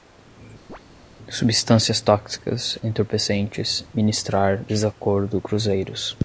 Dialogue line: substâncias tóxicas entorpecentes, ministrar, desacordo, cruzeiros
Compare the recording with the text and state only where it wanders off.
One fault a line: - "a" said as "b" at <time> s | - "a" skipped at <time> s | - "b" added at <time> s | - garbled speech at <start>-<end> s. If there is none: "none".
none